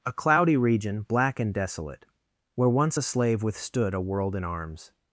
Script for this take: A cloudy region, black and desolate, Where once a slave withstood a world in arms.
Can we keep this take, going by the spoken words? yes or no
yes